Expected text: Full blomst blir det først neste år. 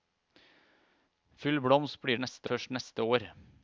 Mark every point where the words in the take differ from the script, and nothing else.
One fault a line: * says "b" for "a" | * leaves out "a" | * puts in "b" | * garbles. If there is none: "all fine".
* says "neste" for "det"